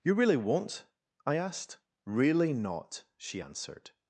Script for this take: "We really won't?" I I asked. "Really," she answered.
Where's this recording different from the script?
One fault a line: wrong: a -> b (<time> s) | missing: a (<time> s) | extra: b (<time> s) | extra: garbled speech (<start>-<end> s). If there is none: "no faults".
wrong: We -> You (0.0 s)
missing: I (1.4 s)
extra: not (2.5 s)